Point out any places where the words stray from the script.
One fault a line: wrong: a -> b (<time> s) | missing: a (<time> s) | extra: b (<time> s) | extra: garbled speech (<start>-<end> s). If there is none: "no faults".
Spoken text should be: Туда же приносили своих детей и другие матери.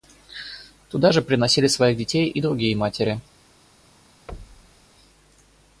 no faults